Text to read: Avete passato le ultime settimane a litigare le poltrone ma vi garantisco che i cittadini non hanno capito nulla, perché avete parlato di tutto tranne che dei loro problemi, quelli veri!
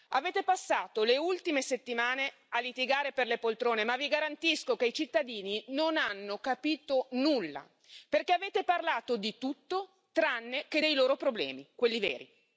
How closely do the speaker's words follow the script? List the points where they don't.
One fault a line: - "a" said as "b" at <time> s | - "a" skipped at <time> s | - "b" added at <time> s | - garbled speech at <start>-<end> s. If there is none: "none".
- "per" added at 3.1 s